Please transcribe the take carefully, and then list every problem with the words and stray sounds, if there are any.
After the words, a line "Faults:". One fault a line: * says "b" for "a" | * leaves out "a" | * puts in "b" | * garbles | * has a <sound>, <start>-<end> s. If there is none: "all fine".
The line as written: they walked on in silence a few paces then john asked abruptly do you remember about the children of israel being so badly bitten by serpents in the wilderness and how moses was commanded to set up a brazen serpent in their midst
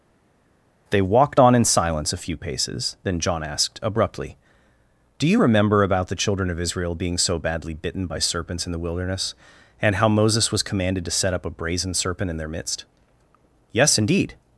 they walked on in silence a few paces then john asked abruptly do you remember about the children of israel being so badly bitten by serpents in the wilderness and how moses was commanded to set up a brazen serpent in their midst yes indeed
Faults:
* puts in "yes indeed"